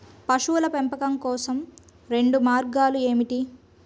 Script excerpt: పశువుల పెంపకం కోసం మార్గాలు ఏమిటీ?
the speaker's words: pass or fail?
fail